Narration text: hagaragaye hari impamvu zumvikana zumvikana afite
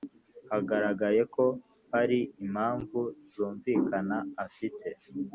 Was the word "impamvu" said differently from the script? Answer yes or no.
no